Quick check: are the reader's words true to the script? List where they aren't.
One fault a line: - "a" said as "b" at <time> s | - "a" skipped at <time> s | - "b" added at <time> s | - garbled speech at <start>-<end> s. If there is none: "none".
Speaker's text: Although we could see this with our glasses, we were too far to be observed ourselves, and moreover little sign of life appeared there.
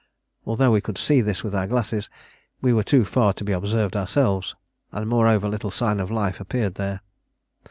none